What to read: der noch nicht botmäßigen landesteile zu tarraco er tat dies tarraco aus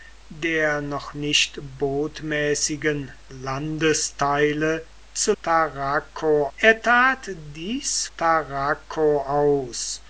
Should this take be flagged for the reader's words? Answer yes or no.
no